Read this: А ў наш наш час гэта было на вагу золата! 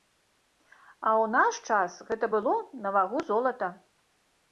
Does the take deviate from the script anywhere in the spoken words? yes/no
yes